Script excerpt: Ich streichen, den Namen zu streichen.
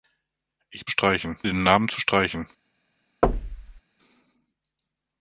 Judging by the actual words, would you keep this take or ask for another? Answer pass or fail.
pass